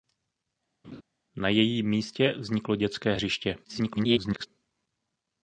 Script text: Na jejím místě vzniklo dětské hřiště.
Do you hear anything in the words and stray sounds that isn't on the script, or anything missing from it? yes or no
yes